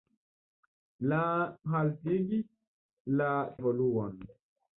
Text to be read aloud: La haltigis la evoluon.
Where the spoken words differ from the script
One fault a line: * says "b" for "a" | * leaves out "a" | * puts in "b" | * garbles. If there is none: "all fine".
all fine